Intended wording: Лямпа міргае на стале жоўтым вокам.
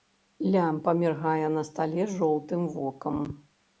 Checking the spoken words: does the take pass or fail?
pass